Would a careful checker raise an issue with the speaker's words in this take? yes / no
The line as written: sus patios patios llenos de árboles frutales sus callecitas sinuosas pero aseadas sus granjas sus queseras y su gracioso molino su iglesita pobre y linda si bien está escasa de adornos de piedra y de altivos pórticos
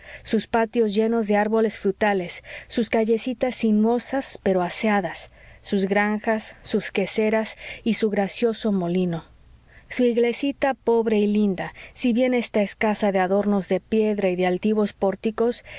yes